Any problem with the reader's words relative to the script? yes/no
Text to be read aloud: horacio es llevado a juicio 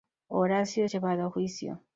no